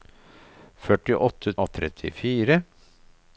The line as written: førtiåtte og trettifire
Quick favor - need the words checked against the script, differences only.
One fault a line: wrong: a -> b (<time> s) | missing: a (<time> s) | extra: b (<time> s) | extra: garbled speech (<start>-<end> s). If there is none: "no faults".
no faults